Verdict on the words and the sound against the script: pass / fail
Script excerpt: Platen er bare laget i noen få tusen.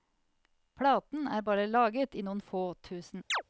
fail